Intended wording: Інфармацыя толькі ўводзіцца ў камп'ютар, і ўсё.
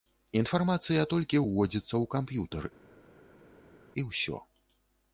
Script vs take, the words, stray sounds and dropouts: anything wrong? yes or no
no